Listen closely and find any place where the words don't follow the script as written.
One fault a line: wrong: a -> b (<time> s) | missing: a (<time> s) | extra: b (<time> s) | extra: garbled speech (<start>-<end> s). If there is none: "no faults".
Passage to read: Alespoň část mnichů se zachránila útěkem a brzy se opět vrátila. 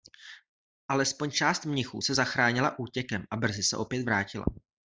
no faults